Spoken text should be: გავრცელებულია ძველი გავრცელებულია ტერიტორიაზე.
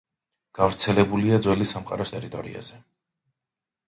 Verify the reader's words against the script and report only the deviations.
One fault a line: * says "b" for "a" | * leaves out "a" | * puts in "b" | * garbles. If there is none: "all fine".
* says "სამყაროს" for "გავრცელებულია"